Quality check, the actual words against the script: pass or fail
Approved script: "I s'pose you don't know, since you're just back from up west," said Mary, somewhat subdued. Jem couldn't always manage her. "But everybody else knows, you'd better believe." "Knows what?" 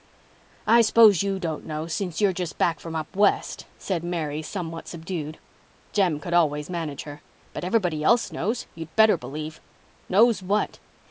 fail